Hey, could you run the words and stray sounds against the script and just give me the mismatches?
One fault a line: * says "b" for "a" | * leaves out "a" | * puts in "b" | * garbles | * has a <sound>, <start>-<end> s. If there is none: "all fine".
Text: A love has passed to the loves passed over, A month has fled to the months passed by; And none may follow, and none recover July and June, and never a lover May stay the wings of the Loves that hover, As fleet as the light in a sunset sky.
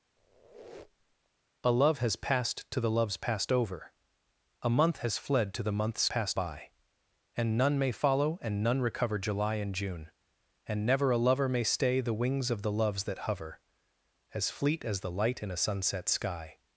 * has a squeak, 0.2-1.3 s